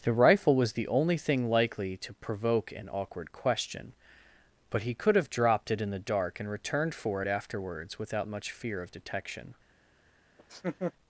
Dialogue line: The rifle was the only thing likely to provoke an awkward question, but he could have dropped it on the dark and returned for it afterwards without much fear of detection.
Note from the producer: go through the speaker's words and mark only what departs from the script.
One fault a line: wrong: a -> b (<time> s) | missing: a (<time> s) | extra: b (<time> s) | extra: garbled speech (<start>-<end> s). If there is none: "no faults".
wrong: on -> in (5.8 s)